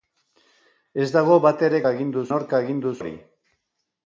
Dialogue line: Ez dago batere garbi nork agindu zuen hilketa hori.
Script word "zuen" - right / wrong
wrong